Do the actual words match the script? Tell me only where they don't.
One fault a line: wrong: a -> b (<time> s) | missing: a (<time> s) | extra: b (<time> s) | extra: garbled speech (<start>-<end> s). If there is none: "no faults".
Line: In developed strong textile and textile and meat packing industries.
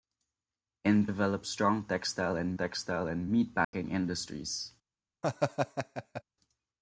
no faults